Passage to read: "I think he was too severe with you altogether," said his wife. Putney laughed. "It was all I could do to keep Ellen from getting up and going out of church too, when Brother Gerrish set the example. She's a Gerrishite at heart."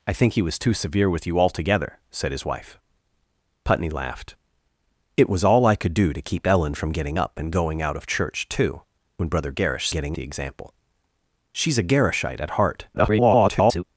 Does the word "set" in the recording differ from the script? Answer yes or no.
yes